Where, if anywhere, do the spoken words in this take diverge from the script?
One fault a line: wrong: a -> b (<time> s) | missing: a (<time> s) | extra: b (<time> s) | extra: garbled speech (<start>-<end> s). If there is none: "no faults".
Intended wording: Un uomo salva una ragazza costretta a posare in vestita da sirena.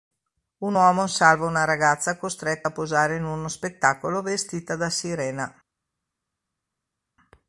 extra: uno spettacolo (3.2 s)